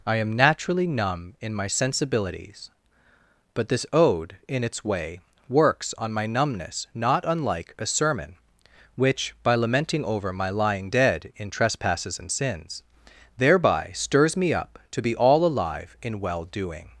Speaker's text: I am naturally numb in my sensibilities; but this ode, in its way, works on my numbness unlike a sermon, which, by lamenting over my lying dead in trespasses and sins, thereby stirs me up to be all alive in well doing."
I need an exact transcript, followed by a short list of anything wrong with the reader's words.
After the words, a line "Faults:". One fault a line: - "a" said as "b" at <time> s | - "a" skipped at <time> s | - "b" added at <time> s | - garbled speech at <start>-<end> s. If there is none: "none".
I am naturally numb in my sensibilities; but this ode, in its way, works on my numbness not unlike a sermon, which, by lamenting over my lying dead in trespasses and sins, thereby stirs me up to be all alive in well doing."
Faults:
- "not" added at 7.0 s